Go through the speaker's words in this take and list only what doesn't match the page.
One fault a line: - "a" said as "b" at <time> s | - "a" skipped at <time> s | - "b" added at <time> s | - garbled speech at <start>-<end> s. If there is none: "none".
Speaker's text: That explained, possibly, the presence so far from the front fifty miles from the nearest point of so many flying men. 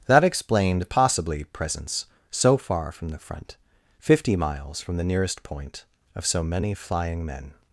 - "the" skipped at 1.4 s